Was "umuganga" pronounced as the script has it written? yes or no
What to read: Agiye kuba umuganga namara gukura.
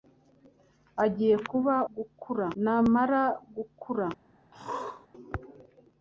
no